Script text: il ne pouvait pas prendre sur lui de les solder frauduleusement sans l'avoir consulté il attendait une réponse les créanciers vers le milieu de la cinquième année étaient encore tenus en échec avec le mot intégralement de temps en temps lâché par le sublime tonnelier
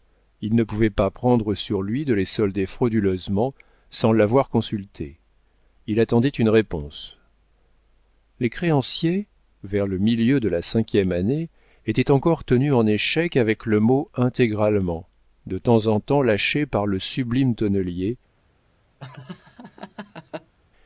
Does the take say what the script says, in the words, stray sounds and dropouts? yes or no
no